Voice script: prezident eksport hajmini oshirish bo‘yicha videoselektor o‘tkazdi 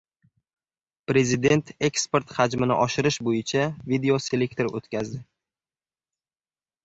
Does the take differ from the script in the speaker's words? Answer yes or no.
no